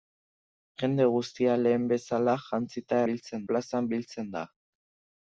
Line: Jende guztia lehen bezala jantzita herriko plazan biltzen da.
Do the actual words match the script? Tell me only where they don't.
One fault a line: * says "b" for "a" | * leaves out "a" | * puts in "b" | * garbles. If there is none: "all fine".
* says "biltzen" for "herriko"